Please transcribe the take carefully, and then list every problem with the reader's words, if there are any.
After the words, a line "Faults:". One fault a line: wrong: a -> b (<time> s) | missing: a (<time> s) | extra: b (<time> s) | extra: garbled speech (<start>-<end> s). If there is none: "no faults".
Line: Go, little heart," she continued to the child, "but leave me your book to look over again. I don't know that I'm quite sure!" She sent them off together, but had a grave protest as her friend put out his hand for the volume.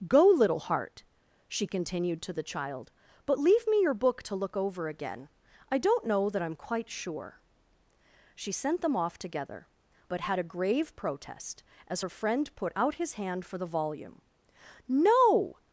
Go, little heart," she continued to the child, "but leave me your book to look over again. I don't know that I'm quite sure!" She sent them off together, but had a grave protest as her friend put out his hand for the volume. "No
Faults:
extra: No (14.9 s)